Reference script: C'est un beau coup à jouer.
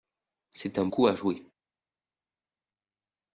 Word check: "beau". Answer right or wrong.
wrong